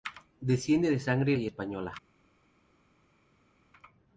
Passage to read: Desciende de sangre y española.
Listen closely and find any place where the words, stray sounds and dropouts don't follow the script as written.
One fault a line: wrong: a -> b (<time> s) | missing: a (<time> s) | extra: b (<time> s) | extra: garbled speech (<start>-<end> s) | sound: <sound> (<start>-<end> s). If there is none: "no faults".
no faults